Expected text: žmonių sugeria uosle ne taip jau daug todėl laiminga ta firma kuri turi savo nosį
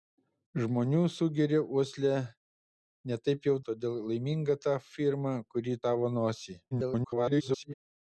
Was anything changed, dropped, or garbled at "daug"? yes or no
yes